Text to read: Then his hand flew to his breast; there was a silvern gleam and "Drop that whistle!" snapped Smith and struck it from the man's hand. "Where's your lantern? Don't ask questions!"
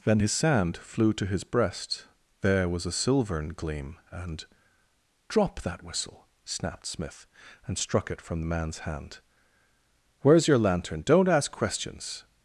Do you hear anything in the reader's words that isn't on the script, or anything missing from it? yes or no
yes